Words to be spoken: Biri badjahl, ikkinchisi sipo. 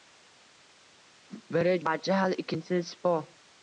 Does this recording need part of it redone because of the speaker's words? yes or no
no